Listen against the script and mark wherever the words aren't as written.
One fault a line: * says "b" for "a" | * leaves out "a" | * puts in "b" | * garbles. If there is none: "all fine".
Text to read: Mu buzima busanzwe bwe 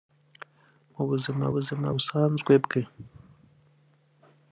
* puts in "buzima"